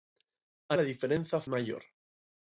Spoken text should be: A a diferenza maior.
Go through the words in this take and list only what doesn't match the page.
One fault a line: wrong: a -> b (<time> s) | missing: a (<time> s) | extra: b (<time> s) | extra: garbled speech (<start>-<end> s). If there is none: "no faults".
no faults